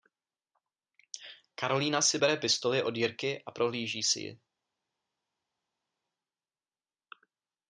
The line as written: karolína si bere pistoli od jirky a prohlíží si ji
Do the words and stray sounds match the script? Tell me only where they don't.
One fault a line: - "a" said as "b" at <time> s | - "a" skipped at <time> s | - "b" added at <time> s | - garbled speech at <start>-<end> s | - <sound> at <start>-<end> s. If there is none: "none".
none